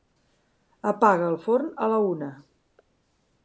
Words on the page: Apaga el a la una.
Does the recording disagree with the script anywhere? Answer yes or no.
yes